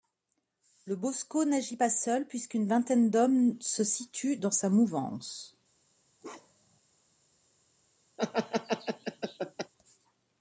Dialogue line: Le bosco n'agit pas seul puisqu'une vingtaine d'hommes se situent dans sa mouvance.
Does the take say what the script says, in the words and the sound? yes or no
no